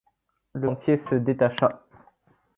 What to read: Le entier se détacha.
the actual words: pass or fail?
pass